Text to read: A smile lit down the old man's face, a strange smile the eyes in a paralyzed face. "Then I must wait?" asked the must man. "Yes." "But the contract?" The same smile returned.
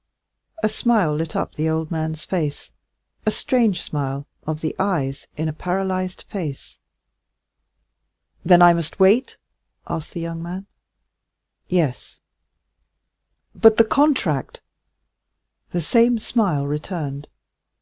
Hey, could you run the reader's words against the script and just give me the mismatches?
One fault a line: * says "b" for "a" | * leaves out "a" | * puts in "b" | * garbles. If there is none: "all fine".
* says "up" for "down"
* puts in "of"
* says "young" for "must"